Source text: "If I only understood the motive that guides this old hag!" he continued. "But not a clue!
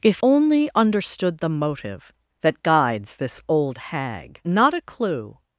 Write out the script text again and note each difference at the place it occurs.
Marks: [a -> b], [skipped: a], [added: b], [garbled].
"If [skipped: I] only understood the motive that guides this old hag!" [skipped: he continued. "But] not a clue!